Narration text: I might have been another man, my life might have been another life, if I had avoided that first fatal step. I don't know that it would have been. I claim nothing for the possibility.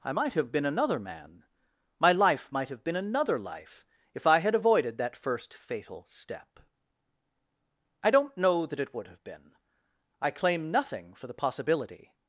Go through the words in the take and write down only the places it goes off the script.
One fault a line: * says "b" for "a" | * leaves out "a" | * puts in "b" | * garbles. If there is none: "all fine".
all fine